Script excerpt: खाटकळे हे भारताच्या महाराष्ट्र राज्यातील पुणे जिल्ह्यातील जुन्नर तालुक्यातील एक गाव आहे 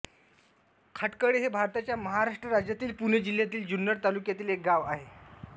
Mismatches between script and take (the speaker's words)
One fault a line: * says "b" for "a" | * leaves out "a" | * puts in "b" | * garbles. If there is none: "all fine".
all fine